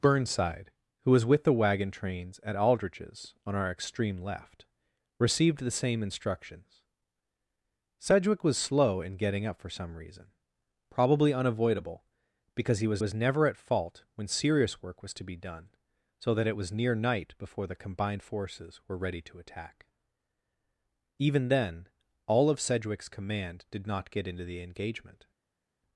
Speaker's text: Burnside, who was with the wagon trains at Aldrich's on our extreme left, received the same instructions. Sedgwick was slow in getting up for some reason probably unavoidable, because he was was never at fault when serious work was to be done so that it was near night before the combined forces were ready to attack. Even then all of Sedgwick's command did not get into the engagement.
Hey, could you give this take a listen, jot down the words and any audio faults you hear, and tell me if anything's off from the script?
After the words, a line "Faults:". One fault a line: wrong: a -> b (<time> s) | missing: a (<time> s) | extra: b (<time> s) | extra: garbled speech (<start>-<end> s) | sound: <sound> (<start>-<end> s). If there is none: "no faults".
Burnside, who was with the wagon trains at Aldrich's on our extreme left, received the same instructions. Sedgwick was slow in getting up for some reason probably unavoidable, because he was was never at fault when serious work was to be done so that it was near night before the combined forces were ready to attack. Even then all of Sedgwick's command did not get into the engagement.
Faults:
no faults